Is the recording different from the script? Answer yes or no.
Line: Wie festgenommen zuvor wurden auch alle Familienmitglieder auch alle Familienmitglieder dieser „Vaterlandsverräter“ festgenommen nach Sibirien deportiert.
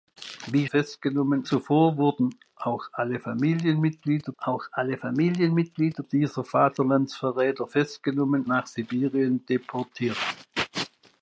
no